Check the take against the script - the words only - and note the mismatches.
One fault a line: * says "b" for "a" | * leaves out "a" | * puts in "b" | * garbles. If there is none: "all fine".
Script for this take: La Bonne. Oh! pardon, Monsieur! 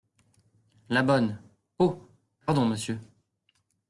all fine